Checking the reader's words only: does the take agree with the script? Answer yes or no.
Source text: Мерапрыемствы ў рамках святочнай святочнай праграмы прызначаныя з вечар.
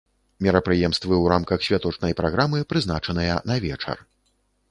no